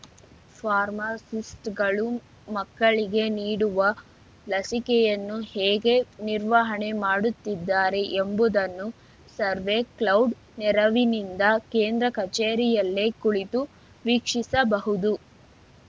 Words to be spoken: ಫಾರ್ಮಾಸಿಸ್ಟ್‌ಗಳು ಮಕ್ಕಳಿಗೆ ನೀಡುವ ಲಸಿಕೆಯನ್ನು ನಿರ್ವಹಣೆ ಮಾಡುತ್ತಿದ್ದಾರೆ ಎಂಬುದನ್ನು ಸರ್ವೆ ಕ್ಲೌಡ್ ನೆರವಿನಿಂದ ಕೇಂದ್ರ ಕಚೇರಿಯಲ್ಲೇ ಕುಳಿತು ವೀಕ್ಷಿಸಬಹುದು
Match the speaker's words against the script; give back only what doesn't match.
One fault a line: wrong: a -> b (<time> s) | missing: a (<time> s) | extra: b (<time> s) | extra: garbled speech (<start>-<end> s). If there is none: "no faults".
extra: ಹೇಗೆ (5.5 s)